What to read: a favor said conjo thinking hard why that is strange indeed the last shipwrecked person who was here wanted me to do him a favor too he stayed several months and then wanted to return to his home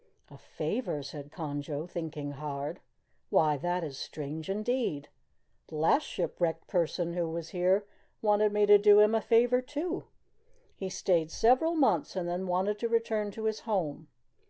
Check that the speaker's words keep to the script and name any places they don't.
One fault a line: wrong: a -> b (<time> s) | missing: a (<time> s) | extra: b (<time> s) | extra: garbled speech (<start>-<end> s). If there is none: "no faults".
no faults